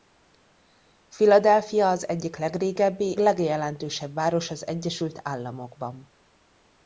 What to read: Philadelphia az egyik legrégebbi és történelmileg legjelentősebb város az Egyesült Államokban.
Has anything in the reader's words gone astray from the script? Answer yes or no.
yes